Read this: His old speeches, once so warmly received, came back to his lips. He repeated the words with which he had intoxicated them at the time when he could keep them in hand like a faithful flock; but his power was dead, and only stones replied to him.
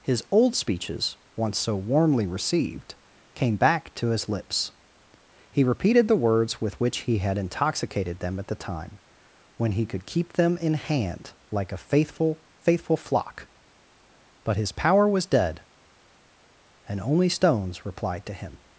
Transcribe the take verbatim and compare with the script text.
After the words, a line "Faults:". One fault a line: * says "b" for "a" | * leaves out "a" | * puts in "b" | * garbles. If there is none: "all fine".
His old speeches, once so warmly received, came back to his lips. He repeated the words with which he had intoxicated them at the time when he could keep them in hand like a faithful faithful flock; but his power was dead, and only stones replied to him.
Faults:
* puts in "faithful"